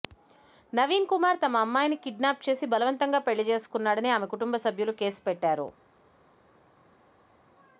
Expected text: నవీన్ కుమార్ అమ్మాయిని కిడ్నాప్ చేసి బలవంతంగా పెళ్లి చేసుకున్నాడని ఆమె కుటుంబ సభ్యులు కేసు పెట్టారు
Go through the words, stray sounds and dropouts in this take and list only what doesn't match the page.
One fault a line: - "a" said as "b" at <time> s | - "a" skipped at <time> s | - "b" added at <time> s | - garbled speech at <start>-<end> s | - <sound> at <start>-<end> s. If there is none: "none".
- "తమ" added at 1.4 s